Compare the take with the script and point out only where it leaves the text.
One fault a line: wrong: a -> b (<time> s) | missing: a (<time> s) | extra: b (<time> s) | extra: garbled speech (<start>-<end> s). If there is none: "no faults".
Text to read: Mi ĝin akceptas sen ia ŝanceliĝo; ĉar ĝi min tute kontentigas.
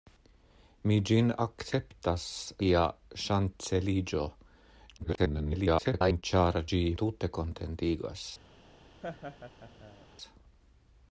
missing: sen (2.2 s)
extra: garbled speech (5.0-6.2 s)
missing: min (6.8 s)